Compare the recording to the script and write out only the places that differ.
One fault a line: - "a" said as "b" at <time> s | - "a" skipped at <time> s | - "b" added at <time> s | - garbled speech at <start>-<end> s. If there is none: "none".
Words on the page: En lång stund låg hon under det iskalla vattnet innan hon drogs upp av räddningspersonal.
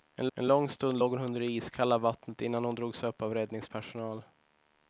- "en" added at 0.3 s